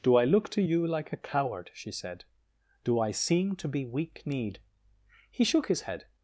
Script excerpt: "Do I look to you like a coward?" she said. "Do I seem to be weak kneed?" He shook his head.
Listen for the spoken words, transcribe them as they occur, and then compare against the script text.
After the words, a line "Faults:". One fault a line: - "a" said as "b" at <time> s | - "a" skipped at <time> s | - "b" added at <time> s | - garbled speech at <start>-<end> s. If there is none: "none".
"Do I look to you like a coward?" she said. "Do I seem to be weak kneed?" He shook his head.
Faults:
none